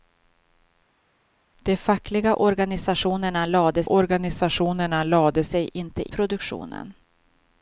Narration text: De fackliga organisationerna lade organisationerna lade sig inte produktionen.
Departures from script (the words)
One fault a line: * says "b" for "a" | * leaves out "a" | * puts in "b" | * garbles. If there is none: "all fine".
all fine